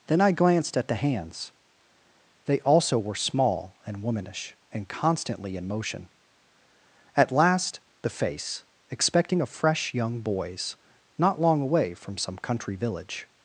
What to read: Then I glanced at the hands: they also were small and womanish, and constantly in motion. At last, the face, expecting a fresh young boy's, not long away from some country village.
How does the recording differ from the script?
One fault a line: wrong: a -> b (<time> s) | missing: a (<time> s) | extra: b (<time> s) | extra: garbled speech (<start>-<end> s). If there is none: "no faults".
no faults